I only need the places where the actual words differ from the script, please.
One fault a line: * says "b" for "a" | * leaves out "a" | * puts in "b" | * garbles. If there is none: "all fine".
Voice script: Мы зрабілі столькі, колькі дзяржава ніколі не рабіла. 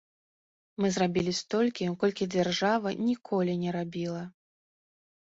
all fine